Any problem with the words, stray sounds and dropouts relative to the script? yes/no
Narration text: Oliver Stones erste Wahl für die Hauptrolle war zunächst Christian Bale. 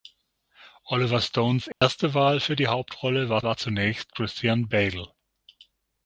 yes